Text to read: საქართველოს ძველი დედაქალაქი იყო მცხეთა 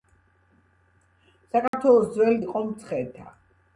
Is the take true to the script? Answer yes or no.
no